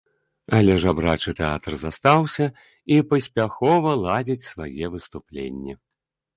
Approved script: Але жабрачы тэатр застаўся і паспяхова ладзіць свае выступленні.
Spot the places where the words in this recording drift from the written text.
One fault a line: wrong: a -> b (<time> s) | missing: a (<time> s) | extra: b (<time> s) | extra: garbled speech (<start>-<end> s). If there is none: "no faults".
no faults